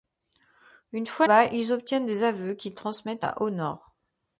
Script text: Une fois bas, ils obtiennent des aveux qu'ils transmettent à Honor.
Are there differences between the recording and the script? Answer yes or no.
no